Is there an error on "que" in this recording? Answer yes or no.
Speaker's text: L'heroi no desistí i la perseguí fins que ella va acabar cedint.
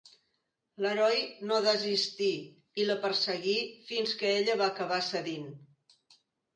no